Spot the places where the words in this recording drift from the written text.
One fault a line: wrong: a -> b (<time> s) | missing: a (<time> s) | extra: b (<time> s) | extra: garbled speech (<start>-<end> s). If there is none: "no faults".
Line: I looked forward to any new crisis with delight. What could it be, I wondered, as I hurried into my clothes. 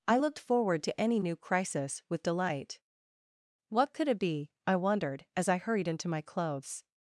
no faults